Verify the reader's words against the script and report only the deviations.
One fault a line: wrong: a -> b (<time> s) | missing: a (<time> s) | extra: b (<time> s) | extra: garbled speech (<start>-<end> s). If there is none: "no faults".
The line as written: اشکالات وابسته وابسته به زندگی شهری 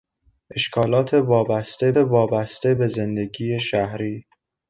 no faults